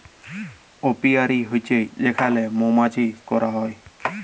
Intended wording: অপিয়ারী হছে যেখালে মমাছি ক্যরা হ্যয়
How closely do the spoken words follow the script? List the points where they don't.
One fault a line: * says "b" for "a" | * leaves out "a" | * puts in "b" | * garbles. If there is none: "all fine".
all fine